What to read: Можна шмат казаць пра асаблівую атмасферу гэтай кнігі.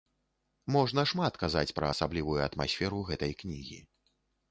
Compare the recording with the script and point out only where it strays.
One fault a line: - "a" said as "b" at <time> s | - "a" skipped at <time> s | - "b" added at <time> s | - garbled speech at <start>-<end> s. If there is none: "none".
none